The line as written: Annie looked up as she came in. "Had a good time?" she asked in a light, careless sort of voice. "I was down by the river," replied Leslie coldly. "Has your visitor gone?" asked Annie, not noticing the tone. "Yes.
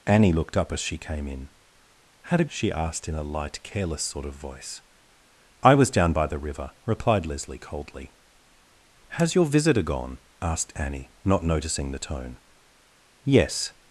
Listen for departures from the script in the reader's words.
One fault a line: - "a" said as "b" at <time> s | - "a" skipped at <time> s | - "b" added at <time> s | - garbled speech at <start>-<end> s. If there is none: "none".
- "good time" skipped at 2.5 s